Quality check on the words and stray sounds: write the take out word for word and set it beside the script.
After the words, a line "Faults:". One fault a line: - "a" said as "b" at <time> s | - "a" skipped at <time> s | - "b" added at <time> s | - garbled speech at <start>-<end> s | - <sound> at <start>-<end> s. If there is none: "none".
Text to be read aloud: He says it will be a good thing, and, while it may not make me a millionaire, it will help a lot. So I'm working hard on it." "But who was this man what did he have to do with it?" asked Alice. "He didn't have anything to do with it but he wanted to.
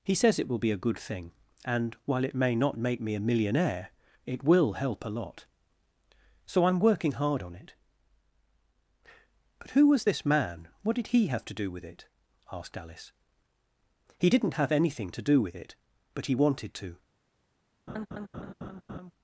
He says it will be a good thing, and, while it may not make me a millionaire, it will help a lot. So I'm working hard on it." "But who was this man what did he have to do with it?" asked Alice. "He didn't have anything to do with it but he wanted to.
Faults:
- laugh at 17.9-19.1 s